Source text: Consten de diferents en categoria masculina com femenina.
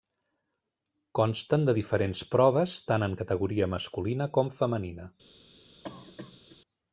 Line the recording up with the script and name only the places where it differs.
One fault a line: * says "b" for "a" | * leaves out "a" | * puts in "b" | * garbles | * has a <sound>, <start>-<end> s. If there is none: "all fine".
* puts in "proves tant"
* has a cough, 5.8-6.6 s